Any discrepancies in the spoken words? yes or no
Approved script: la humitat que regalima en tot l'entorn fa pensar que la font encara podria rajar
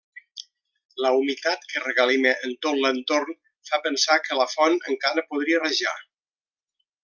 no